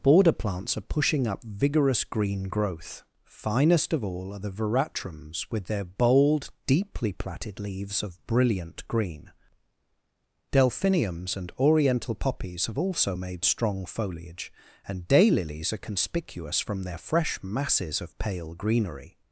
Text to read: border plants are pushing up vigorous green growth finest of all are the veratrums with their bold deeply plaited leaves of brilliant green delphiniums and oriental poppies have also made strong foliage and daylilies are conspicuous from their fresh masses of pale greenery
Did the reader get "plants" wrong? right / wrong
right